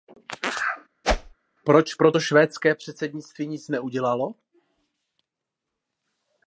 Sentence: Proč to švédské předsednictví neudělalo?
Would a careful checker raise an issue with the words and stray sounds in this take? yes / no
yes